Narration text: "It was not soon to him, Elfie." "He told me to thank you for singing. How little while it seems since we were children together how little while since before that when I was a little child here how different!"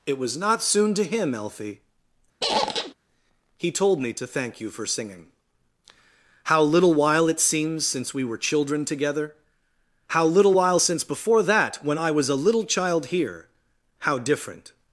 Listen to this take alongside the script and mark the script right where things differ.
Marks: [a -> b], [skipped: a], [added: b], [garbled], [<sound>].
"It was not soon to him, Elfie." [squeak] "He told me to thank you for singing. How little while it seems since we were children together how little while since before that when I was a little child here how different!"